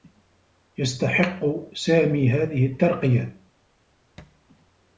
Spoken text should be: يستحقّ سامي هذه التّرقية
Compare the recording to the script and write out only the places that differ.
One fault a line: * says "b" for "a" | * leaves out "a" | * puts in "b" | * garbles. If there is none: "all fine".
all fine